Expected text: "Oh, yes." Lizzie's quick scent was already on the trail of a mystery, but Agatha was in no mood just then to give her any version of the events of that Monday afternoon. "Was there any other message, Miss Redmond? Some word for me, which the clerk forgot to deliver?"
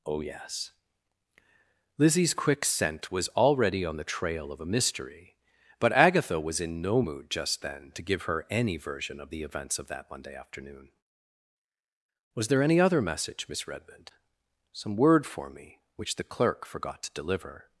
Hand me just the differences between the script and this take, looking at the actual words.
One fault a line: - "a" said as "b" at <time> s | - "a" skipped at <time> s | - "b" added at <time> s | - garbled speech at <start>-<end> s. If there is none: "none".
none